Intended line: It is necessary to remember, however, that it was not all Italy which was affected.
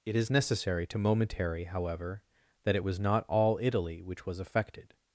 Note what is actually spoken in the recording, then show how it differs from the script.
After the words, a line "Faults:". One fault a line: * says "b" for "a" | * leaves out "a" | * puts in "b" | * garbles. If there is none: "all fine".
It is necessary to momentary, however, that it was not all Italy which was affected.
Faults:
* says "momentary" for "remember"